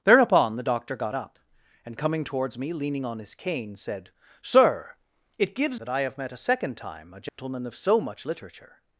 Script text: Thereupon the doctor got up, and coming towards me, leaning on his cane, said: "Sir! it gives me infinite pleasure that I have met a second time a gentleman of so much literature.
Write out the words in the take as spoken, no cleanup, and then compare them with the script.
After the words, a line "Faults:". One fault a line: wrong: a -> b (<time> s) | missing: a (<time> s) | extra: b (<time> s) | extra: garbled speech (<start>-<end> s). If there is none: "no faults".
Thereupon the doctor got up, and coming towards me, leaning on his cane, said: "Sir! it gives that I have met a second time a gentleman of so much literature.
Faults:
missing: me infinite pleasure (5.8 s)